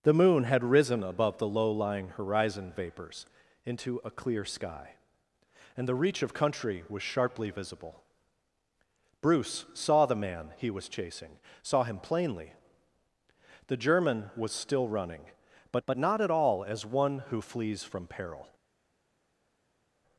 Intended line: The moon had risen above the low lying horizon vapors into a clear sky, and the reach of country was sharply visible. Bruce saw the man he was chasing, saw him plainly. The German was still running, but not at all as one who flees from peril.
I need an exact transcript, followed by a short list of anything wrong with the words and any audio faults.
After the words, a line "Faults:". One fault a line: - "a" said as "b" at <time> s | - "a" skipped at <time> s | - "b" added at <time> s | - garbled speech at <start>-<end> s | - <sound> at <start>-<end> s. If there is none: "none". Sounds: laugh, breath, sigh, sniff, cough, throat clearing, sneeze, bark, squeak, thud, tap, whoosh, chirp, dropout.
The moon had risen above the low lying horizon vapors into a clear sky, and the reach of country was sharply visible. Bruce saw the man he was chasing, saw him plainly. The German was still running, but but not at all as one who flees from peril.
Faults:
- "but" added at 15.8 s